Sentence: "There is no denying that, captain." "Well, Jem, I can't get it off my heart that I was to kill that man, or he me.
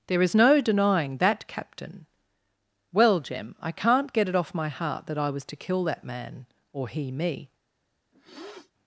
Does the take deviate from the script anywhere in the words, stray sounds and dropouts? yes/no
yes